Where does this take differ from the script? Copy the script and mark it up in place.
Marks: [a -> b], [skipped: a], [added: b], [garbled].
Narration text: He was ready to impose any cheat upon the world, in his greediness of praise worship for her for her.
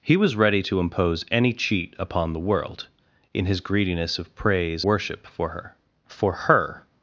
He was ready to impose any cheat upon the world, in his greediness of praise worship for her for her.